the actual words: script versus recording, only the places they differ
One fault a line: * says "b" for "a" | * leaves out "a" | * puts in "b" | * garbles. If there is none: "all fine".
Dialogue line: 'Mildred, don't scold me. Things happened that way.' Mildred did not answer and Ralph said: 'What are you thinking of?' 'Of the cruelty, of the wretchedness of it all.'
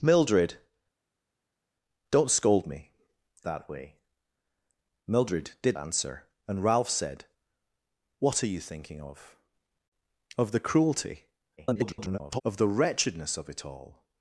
* leaves out "Things happened"
* leaves out "not"
* garbles